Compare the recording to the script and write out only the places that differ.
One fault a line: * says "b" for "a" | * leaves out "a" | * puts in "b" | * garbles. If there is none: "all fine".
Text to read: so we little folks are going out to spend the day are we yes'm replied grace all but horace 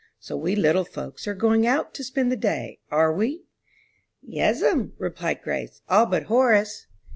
all fine